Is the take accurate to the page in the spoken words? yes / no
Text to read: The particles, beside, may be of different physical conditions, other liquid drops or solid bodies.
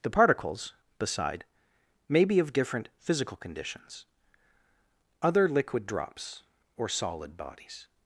yes